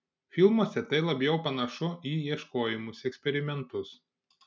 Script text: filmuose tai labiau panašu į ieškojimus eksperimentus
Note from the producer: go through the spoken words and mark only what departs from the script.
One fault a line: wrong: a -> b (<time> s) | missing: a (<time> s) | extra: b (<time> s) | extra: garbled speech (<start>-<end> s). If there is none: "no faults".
no faults